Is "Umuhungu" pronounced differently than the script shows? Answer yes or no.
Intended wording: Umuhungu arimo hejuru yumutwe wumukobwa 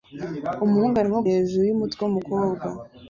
no